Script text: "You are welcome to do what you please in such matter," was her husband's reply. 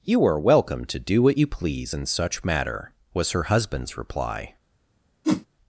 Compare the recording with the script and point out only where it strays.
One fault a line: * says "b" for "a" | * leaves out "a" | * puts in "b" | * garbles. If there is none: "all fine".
all fine